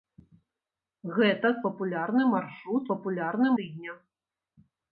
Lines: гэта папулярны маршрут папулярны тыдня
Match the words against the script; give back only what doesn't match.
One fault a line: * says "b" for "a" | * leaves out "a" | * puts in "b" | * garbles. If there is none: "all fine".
all fine